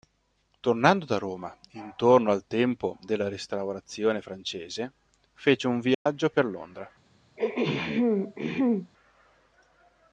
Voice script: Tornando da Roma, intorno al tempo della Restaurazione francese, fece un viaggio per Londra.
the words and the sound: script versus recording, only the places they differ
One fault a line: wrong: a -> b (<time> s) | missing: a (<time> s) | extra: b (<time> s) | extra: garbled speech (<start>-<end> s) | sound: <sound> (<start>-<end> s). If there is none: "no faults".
sound: dropout (5.9-6.1 s)
sound: throat clearing (7.4-8.9 s)